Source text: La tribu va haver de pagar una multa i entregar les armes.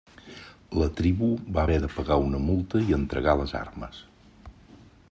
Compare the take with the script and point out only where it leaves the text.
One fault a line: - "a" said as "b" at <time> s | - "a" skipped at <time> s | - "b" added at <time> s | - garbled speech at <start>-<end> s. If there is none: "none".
none